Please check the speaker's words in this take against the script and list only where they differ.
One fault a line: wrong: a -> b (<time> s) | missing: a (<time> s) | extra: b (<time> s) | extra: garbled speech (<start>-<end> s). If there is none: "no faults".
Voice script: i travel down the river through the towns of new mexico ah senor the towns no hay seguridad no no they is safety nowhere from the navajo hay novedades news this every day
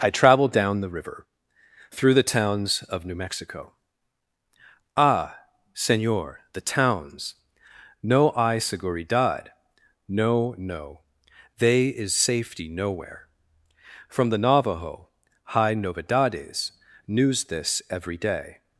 no faults